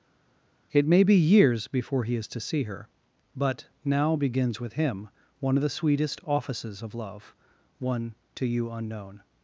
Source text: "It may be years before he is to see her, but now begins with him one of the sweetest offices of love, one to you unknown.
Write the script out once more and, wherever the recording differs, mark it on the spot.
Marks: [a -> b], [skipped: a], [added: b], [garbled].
"It may be years before he is to see her, but now begins with him one of the sweetest offices of love, one to you unknown.